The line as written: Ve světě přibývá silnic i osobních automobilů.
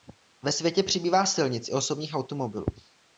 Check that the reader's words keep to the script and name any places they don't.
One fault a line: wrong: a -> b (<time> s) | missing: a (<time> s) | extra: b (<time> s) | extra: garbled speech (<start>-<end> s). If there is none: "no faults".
no faults